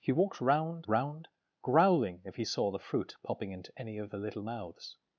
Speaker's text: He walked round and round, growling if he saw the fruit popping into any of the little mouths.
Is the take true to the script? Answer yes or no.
no